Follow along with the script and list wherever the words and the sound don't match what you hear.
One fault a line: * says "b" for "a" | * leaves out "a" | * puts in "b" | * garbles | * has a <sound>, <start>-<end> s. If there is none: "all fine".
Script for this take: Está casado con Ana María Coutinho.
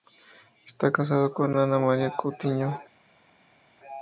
all fine